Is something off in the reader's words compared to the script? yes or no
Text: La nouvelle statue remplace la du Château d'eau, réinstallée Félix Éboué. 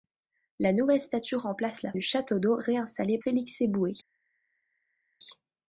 no